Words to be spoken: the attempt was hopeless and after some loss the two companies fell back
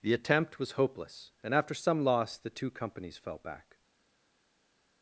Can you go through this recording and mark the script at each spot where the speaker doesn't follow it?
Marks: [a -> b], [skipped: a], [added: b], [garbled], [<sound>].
the attempt was hopeless and after some loss the two companies fell back